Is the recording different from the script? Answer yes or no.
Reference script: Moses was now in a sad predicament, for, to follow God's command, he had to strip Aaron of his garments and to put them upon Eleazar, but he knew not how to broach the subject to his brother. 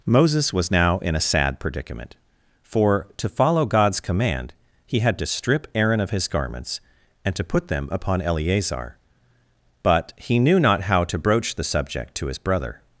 no